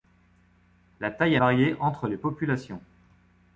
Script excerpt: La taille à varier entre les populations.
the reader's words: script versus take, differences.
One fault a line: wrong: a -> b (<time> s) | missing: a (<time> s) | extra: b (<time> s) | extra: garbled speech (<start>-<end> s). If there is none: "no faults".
no faults